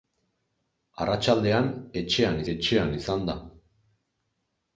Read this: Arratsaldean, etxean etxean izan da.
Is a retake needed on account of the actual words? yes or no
no